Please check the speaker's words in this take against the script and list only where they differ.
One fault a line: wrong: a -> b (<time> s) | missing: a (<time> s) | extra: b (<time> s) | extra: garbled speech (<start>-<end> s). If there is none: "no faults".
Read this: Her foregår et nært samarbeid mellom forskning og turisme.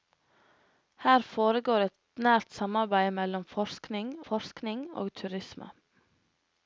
extra: forskning (4.3 s)